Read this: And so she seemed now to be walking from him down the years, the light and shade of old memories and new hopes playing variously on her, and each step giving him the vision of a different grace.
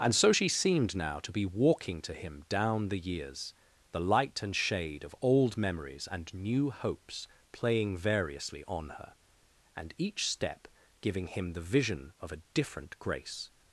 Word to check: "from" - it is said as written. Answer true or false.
false